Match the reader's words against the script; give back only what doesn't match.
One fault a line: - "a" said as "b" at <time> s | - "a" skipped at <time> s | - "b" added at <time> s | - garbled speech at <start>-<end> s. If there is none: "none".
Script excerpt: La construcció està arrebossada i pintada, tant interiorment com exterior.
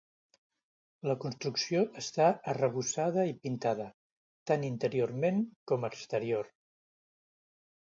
none